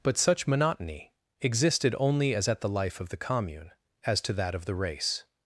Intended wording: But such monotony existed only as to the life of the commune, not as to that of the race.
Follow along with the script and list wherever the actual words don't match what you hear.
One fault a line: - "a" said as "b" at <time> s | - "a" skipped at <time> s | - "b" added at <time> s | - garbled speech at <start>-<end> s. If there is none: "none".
- "to" said as "at" at 2.5 s
- "not" skipped at 3.7 s